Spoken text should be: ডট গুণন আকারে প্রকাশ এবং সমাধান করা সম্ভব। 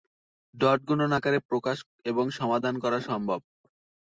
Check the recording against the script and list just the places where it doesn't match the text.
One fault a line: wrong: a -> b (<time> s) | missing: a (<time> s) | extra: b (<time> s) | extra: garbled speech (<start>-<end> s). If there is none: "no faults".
no faults